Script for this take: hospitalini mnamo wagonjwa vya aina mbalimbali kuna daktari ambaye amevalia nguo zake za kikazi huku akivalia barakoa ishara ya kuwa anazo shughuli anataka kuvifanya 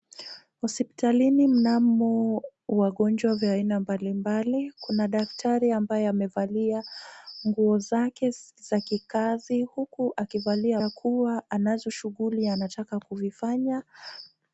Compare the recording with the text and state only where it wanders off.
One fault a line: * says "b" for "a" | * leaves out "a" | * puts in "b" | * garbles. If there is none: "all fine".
* leaves out "barakoa ishara"